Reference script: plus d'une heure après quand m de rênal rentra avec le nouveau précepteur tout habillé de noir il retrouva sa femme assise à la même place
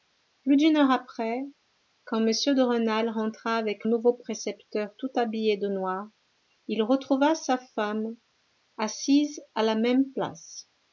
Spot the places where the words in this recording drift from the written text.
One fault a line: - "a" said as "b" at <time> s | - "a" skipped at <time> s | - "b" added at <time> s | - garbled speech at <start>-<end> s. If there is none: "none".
- "le" skipped at 3.9 s